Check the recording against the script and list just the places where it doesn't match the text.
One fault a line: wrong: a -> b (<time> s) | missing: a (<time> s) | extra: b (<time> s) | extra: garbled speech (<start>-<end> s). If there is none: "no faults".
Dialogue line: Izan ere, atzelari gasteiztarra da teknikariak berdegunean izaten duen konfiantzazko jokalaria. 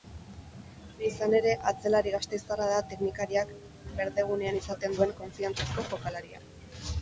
no faults